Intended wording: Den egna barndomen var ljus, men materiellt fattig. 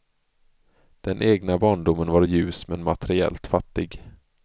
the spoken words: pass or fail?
pass